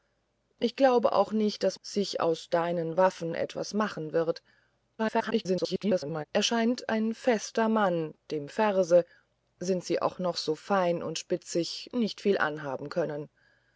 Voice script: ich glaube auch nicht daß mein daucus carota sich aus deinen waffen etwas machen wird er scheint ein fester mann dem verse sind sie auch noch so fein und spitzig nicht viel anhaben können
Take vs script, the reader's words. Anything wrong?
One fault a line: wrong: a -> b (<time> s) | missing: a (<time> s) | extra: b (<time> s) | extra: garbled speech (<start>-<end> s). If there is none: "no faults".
missing: mein daucus carota (1.8 s)
extra: garbled speech (5.0-6.3 s)